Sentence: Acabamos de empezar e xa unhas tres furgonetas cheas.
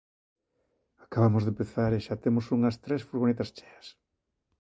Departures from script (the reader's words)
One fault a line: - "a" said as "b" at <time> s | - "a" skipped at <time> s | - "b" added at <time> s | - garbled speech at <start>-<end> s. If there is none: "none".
- "temos" added at 2.2 s